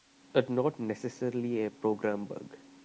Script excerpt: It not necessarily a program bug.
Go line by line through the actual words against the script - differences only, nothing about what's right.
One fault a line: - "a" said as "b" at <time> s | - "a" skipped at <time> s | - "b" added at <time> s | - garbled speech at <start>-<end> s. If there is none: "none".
none